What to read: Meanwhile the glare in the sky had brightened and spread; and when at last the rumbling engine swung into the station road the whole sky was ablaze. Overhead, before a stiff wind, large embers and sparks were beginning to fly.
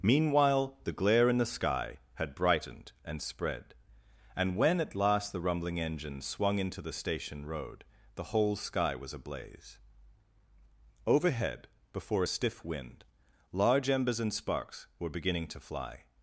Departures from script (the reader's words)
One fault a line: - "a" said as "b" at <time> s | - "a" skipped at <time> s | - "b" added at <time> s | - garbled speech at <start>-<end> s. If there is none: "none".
none